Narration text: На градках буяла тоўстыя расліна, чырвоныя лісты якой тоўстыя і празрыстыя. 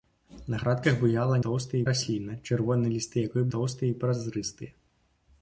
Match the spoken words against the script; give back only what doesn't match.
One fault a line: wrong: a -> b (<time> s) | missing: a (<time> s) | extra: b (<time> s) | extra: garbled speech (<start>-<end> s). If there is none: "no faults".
no faults